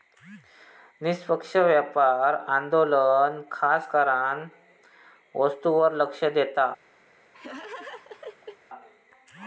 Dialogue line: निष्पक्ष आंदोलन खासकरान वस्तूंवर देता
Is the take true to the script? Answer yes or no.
no